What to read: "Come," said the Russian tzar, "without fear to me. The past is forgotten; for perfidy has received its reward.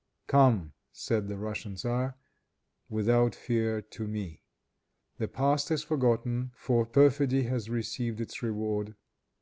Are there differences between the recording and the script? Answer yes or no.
no